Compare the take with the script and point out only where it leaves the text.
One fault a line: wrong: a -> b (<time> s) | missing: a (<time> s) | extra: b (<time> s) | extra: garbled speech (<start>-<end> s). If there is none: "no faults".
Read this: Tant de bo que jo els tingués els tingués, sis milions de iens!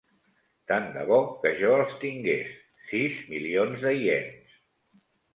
missing: els tingués (2.5 s)